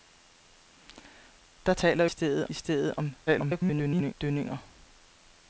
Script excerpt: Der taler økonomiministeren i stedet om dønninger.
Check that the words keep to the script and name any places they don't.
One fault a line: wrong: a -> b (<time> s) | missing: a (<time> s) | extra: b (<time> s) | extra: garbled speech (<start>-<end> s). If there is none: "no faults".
wrong: økonomiministeren -> stedet (2.1 s)
extra: garbled speech (3.3-4.1 s)